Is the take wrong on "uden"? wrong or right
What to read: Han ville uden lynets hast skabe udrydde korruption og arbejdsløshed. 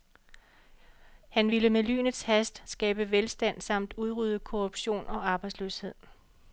wrong